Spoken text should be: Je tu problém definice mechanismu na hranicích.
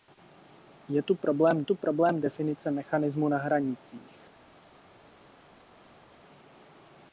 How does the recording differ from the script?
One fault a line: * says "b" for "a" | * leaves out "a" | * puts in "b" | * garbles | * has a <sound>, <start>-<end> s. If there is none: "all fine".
* puts in "tu problém"